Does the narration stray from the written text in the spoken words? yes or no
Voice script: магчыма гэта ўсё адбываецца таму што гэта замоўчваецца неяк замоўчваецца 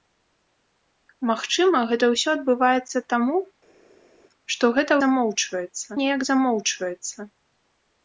no